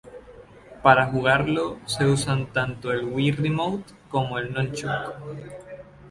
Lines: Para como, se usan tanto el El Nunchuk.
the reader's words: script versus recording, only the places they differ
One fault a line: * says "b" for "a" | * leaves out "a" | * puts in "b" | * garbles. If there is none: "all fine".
* says "jugarlo" for "como"
* puts in "Wii Remote como"